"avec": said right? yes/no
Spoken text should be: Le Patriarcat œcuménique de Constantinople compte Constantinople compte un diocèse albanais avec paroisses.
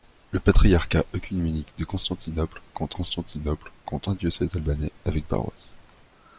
yes